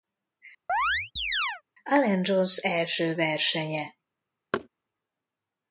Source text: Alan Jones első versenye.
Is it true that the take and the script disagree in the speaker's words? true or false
false